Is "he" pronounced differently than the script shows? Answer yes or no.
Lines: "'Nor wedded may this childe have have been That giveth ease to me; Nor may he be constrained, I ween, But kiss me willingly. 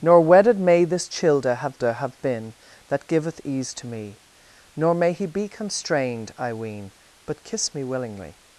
no